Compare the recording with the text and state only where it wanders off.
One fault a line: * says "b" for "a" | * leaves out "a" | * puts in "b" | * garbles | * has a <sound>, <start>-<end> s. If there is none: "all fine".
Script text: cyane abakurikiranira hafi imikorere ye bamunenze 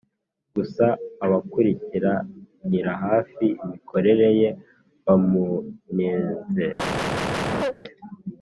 * says "gusa" for "cyane"
* has a cough, 6.8-7.8 s